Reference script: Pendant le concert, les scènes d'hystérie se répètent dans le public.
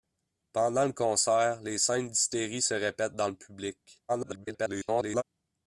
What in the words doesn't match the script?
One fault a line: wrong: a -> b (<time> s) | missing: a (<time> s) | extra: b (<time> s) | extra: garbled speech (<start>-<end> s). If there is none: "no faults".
extra: garbled speech (4.1-5.2 s)